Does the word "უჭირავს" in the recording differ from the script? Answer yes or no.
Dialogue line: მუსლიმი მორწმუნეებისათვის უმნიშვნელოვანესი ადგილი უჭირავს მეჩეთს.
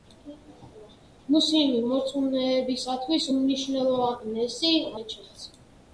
yes